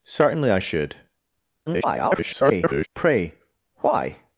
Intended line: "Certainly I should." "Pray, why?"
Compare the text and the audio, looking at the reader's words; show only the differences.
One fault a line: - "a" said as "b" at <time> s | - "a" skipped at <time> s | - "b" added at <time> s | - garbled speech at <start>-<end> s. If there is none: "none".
- garbled speech at 1.7-2.9 s